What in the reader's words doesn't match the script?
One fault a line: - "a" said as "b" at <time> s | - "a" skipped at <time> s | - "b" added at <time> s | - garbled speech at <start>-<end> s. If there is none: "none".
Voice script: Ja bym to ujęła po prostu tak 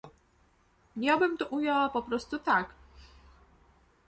none